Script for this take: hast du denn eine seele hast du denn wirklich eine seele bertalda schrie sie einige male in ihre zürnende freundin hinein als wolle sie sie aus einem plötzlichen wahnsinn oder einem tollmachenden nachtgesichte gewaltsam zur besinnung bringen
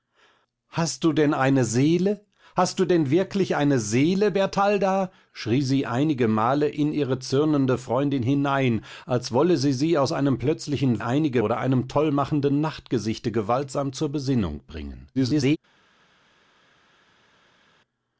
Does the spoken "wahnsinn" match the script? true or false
false